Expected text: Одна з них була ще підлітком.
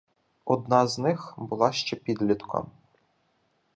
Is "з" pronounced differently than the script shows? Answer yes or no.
no